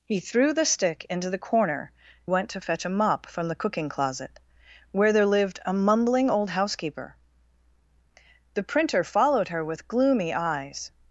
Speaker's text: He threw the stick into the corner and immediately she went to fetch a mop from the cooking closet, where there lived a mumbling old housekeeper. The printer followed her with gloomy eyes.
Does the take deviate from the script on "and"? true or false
true